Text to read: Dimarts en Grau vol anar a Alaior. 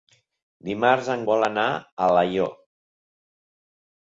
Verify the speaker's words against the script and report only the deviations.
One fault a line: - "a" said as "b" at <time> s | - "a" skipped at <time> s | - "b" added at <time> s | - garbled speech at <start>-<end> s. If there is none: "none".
- "Grau" skipped at 1.2 s